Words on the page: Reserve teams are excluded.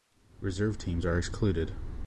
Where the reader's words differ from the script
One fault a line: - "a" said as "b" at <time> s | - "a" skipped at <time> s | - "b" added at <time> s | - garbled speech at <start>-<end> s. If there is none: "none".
none